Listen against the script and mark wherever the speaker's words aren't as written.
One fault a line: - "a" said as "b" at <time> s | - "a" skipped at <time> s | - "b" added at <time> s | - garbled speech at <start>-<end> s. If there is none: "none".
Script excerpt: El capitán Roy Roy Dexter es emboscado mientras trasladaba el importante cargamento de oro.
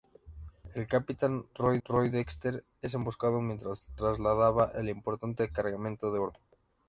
none